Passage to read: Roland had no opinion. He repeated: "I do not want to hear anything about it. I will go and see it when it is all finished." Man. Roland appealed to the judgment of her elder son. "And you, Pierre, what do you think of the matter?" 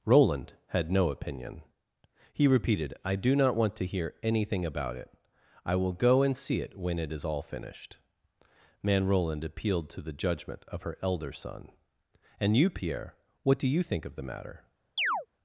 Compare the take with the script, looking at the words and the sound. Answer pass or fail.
fail